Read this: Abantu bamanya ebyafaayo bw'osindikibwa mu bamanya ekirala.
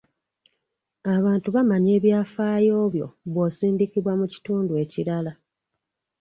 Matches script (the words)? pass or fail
fail